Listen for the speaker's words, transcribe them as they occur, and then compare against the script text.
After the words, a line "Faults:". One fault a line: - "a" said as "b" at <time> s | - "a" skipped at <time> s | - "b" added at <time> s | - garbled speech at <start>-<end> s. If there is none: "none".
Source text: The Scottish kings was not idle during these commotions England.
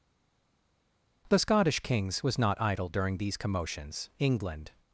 The Scottish kings was not idle during these commotions England.
Faults:
none